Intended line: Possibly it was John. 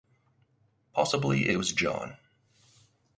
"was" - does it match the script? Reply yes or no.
yes